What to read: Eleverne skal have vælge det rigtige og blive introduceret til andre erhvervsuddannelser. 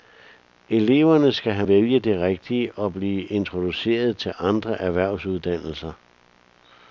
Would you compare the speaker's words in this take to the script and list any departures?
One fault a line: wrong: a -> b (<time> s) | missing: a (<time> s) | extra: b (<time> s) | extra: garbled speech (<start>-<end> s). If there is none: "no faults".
no faults